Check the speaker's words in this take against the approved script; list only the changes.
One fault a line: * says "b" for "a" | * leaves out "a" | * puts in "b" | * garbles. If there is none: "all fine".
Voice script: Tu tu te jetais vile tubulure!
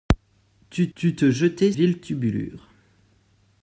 all fine